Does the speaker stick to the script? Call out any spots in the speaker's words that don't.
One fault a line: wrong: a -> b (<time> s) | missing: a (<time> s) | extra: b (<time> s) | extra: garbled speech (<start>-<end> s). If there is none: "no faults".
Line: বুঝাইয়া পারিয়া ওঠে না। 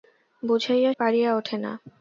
no faults